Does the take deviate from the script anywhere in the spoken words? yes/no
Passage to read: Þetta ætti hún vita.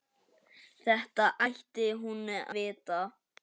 no